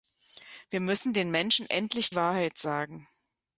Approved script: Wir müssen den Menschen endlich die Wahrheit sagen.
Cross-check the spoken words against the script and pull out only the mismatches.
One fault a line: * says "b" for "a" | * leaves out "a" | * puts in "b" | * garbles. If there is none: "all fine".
* leaves out "die"